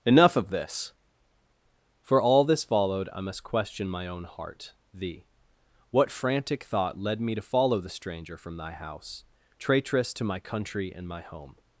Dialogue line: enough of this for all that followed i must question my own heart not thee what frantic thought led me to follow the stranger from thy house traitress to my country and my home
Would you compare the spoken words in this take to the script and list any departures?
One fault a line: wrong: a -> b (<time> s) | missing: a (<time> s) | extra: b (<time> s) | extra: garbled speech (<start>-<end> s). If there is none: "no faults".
wrong: that -> this (2.4 s)
missing: not (4.7 s)